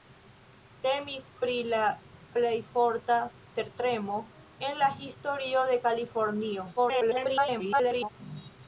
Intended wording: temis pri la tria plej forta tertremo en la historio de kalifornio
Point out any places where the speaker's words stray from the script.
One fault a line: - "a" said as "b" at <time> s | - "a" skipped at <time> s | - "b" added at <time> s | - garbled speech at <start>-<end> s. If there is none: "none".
- "tria" skipped at 1.8 s
- garbled speech at 6.8-8.1 s